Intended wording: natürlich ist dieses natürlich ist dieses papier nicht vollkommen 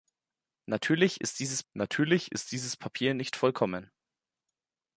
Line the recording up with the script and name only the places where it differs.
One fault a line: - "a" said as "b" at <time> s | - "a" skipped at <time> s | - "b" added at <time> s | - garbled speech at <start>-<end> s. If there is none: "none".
none